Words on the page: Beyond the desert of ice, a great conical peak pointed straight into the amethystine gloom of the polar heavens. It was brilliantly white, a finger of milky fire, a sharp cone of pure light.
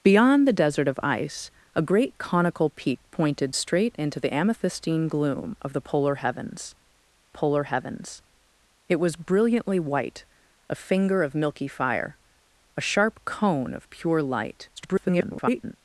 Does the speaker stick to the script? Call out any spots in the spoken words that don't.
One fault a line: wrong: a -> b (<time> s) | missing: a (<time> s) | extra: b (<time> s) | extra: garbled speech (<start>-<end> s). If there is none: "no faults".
extra: polar heavens (7.3 s)
extra: garbled speech (14.8-15.8 s)